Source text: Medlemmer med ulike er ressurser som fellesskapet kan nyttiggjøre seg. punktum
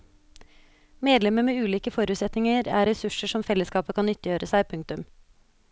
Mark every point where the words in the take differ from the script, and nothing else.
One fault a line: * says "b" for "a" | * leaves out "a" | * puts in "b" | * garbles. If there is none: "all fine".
* puts in "forutsetninger"